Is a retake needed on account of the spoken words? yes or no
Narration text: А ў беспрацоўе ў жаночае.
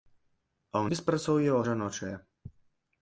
no